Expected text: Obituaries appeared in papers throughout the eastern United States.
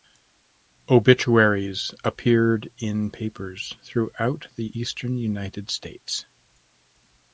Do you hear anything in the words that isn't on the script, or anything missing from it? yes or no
no